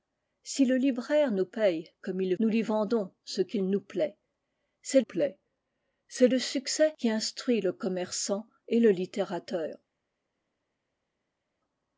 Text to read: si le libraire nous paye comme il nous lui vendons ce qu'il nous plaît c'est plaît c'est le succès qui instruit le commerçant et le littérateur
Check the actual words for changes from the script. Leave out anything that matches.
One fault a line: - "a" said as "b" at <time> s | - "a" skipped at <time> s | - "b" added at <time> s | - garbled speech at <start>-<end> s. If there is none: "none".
none